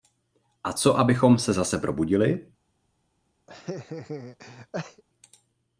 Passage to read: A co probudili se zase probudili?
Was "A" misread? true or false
false